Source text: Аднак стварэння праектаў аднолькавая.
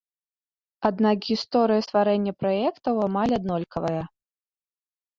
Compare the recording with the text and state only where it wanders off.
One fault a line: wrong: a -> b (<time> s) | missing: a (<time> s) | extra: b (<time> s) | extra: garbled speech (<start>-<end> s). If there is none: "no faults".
extra: гісторыя (1.3 s)
extra: амаль (3.1 s)